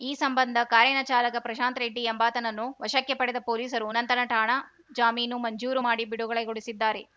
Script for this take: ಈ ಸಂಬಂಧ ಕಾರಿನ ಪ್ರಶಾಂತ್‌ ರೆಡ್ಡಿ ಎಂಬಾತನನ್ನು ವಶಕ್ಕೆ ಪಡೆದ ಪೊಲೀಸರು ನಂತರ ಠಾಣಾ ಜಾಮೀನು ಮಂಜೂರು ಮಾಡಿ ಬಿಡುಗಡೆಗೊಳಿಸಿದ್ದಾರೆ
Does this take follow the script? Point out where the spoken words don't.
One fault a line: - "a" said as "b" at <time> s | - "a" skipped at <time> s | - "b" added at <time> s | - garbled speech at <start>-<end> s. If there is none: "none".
- "ಚಾಲಕ" added at 1.0 s